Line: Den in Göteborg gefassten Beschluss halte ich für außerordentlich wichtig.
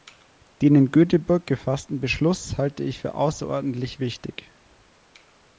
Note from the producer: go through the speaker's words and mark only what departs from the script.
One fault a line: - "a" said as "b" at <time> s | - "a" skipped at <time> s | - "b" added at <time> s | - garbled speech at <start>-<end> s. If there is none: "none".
none